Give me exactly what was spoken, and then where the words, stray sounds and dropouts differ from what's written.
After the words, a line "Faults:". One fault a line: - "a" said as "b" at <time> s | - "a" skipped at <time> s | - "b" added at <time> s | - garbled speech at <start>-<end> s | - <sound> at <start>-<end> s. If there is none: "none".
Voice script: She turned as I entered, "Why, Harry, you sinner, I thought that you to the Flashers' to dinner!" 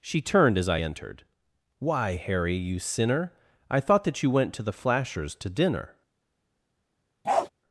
She turned as I entered, "Why, Harry, you sinner, I thought that you went to the Flashers' to dinner!"
Faults:
- "went" added at 4.3 s
- bark at 7.2-7.5 s